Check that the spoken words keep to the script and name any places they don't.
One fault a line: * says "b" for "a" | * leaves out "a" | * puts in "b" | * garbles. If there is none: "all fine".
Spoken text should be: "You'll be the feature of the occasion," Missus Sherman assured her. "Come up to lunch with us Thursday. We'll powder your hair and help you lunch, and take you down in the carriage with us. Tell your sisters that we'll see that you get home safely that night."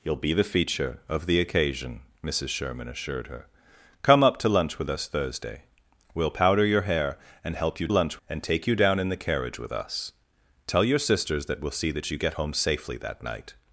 all fine